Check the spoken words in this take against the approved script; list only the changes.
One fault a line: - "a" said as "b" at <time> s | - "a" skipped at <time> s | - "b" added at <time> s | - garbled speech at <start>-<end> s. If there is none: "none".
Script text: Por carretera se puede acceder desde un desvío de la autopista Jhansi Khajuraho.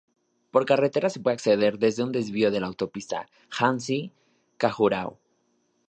none